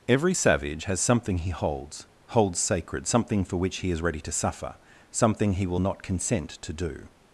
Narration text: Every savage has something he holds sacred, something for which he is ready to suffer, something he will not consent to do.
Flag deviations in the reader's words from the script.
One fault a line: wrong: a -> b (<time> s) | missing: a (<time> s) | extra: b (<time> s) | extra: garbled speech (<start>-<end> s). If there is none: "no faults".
extra: holds (2.3 s)